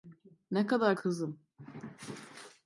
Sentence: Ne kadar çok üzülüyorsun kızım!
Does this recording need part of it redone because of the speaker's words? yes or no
yes